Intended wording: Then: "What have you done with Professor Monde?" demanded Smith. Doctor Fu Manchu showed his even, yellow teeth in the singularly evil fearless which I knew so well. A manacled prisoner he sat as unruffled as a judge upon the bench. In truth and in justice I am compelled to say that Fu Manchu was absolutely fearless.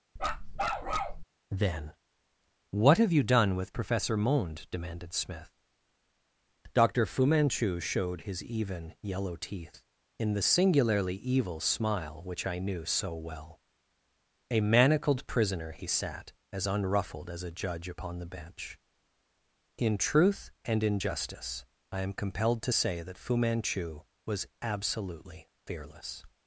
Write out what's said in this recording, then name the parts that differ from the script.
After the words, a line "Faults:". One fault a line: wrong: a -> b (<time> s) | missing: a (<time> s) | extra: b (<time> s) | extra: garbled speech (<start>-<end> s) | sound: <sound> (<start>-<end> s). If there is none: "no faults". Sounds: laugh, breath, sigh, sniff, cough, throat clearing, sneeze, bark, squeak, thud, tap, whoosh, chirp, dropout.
Then: "What have you done with Professor Monde?" demanded Smith. Doctor Fu Manchu showed his even, yellow teeth in the singularly evil smile which I knew so well. A manacled prisoner he sat as unruffled as a judge upon the bench. In truth and in justice I am compelled to say that Fu Manchu was absolutely fearless.
Faults:
sound: bark (0.2-1.2 s)
wrong: fearless -> smile (11.6 s)